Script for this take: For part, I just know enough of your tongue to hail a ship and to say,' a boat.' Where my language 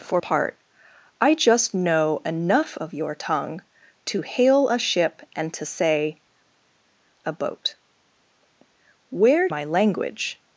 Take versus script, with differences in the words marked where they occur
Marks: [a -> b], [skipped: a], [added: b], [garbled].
For part, I just know enough of your tongue to hail a ship and to say,' a boat.' Where my language